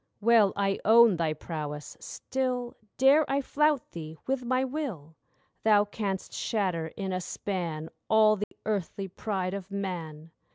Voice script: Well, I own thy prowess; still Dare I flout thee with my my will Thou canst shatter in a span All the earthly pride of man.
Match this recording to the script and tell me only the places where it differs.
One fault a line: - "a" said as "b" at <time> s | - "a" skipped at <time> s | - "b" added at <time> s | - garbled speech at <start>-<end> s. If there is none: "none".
- "my" skipped at 4.6 s